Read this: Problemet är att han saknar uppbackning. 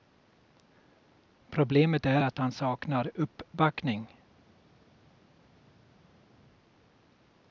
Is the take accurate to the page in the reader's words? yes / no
yes